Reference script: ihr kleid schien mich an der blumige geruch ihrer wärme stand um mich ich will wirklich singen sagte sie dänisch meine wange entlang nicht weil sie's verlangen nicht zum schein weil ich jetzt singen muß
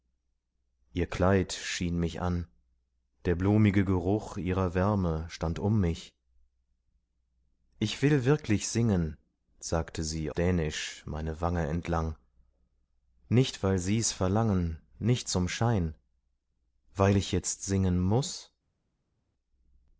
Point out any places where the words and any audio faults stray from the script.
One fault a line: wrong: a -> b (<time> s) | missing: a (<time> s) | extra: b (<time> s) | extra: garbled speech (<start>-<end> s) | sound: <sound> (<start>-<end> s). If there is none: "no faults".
no faults